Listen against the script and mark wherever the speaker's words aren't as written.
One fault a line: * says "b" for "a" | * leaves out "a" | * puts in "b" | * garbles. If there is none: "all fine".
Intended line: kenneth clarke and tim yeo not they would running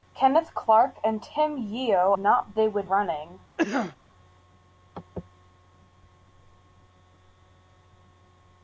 all fine